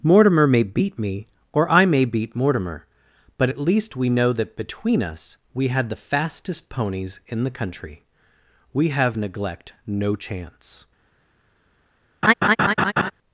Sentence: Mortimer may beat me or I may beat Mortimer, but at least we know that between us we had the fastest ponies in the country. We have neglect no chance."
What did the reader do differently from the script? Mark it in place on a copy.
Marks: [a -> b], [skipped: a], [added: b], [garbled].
Mortimer may beat me or I may beat Mortimer, but at least we know that between us we had the fastest ponies in the country. We have neglect no chance."